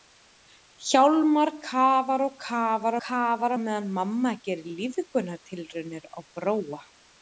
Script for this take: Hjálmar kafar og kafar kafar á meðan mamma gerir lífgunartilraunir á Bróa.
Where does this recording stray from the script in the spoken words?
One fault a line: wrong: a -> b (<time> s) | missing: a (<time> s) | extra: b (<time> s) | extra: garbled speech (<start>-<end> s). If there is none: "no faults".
no faults